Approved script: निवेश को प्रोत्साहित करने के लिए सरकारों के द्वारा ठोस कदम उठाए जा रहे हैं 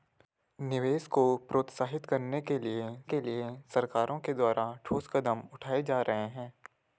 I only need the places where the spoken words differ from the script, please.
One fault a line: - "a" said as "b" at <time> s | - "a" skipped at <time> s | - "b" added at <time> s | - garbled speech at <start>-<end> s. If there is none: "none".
- "के लिए" added at 3.0 s